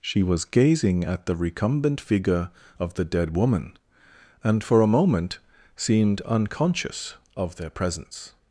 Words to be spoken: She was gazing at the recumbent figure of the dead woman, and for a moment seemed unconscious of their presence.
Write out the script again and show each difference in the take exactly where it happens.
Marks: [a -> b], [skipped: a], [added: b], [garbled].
She was gazing at the recumbent figure of the dead woman, and for a moment seemed unconscious of their presence.